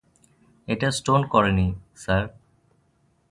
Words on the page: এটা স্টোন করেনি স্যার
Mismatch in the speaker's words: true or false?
false